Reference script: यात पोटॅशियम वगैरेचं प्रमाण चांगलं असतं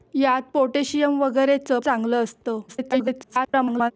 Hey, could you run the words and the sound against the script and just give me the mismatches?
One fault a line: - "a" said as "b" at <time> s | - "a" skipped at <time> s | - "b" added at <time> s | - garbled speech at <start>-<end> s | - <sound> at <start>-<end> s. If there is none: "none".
- "प्रमाण" skipped at 1.8 s
- garbled speech at 2.7-3.9 s